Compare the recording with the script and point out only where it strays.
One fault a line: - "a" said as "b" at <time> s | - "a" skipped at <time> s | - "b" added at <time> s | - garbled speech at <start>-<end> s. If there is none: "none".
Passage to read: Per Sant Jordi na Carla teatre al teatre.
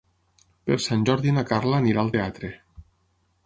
- "teatre" said as "anirà" at 1.8 s